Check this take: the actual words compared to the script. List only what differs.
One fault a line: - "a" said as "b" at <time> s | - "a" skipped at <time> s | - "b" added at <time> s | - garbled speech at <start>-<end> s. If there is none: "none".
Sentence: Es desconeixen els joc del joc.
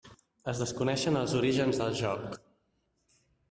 - "joc" said as "orígens" at 1.4 s